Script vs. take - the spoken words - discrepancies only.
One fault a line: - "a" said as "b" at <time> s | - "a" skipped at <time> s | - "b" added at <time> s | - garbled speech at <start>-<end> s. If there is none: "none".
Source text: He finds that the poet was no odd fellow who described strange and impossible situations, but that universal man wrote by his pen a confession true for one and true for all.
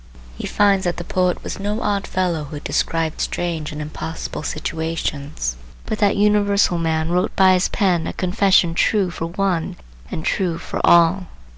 none